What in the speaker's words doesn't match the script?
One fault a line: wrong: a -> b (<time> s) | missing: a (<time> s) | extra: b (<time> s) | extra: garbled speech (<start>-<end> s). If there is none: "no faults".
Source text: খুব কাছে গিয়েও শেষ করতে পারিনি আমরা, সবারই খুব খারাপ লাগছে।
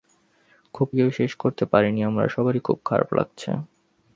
missing: কাছে (0.9 s)